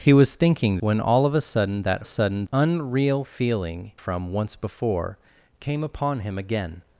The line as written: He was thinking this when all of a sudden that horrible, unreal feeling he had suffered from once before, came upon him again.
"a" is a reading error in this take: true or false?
false